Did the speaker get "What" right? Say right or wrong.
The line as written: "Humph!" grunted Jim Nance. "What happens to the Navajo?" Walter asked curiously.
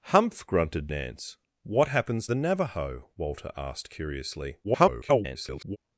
right